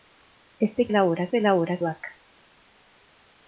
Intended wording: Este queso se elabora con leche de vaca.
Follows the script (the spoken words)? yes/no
no